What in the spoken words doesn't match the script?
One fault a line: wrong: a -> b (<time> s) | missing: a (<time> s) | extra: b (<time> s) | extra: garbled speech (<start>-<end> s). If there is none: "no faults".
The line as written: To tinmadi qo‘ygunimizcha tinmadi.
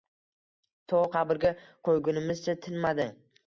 wrong: tinmadi -> qabrga (1.1 s)